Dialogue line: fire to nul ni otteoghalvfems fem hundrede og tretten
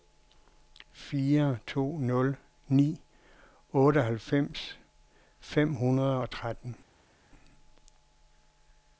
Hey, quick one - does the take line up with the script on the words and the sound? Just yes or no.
yes